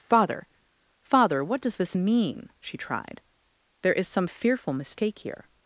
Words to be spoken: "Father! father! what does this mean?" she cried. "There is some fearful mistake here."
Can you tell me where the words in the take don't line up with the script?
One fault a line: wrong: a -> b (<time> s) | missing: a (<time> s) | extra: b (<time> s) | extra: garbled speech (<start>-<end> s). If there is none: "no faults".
wrong: cried -> tried (2.8 s)